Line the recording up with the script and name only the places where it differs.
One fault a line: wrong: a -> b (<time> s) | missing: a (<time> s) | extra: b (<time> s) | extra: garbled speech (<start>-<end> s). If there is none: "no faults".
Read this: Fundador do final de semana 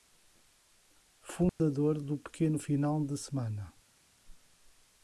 extra: pequeno (2.2 s)